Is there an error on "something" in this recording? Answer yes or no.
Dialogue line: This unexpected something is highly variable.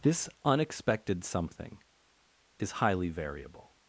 no